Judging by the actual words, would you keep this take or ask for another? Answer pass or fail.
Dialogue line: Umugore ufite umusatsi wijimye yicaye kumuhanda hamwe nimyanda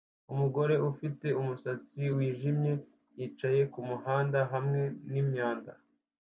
pass